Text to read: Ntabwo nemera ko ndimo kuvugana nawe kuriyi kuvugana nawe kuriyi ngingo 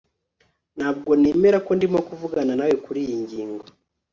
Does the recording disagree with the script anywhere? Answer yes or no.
yes